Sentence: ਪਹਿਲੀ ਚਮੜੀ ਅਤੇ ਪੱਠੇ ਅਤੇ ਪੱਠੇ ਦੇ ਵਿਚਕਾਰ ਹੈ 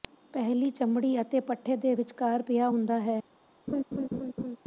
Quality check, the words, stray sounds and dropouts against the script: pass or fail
fail